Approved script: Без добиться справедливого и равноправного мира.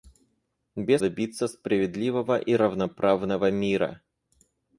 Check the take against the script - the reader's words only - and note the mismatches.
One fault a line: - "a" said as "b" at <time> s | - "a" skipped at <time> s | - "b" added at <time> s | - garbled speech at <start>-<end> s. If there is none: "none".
none